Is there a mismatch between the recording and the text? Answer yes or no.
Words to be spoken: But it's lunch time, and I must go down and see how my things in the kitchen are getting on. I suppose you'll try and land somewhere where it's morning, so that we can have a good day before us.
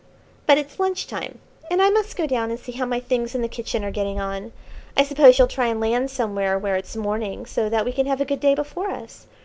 no